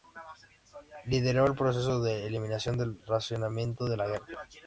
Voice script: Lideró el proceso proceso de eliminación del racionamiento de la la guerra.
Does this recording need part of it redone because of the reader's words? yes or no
yes